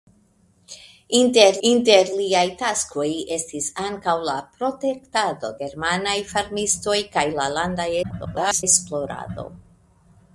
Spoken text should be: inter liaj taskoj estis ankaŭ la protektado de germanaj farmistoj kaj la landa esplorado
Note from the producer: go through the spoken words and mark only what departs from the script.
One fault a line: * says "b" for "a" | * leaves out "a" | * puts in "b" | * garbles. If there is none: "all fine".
* puts in "inter"
* leaves out "de"
* garbles